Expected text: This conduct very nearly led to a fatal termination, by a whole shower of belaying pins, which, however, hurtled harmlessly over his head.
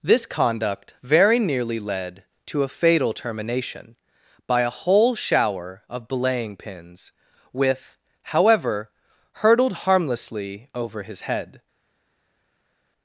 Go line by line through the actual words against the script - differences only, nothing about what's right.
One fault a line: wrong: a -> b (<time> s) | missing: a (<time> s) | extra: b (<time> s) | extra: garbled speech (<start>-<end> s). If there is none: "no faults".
wrong: which -> with (7.5 s)